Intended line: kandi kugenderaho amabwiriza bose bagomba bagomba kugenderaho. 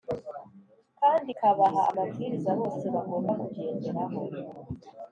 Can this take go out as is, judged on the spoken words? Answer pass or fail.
fail